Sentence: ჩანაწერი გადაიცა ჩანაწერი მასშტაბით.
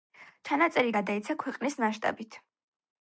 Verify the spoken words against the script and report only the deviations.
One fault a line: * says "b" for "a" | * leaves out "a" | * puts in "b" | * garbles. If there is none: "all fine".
* says "ქვეყნის" for "ჩანაწერი"